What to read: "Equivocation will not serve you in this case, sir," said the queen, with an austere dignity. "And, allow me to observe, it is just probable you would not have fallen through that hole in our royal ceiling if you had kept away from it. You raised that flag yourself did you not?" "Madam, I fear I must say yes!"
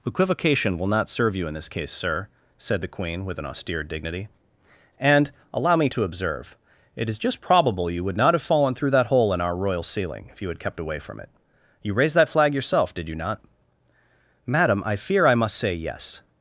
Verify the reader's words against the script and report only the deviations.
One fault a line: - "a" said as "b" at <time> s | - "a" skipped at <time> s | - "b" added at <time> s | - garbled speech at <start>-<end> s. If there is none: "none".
none